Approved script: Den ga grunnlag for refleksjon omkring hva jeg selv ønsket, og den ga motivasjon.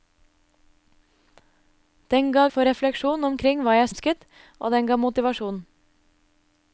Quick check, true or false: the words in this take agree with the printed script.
false